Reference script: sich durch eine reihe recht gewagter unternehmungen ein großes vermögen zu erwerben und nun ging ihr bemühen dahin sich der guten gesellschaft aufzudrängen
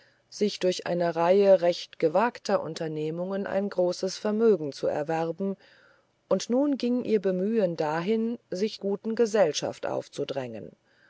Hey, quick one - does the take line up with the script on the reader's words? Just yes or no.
no